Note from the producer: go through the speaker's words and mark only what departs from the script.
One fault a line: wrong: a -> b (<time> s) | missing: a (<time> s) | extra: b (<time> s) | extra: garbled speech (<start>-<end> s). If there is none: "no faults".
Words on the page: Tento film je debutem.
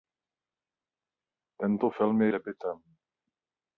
no faults